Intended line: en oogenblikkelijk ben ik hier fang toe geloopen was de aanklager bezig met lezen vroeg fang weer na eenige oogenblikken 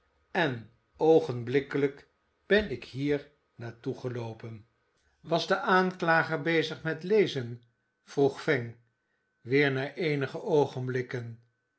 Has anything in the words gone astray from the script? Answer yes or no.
yes